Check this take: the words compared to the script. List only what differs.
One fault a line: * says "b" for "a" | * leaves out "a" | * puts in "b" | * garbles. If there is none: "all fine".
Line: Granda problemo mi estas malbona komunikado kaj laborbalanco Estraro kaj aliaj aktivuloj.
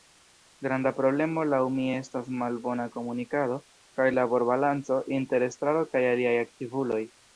* puts in "laŭ"
* puts in "inter"